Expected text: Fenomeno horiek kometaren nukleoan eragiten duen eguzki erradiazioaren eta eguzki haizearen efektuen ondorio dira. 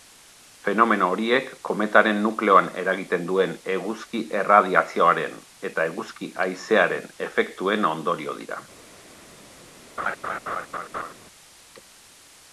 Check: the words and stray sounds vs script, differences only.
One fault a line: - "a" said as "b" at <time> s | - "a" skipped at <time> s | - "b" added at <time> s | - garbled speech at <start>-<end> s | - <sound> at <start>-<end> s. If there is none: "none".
- laugh at 10.0-11.1 s